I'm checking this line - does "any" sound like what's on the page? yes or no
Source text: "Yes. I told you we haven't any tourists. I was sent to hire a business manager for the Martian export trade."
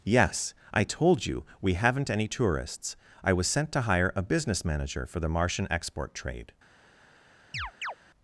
yes